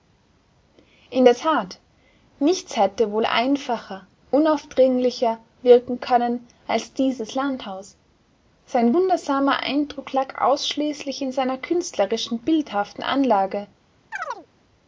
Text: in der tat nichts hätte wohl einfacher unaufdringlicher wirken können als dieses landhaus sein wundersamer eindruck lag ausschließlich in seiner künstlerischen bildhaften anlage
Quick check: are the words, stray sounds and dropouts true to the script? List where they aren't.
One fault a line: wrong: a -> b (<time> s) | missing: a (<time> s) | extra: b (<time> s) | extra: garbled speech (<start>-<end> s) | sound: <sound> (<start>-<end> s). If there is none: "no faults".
sound: chirp (14.1-14.5 s)